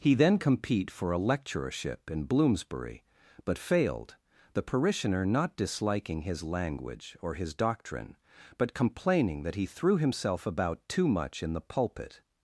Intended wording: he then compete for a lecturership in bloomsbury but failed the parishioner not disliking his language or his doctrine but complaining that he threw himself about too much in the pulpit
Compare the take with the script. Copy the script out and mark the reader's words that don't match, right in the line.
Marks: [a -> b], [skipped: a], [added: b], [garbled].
he then compete for a lecturership in bloomsbury but failed the parishioner not disliking his language or his doctrine but complaining that he threw himself about too much in the pulpit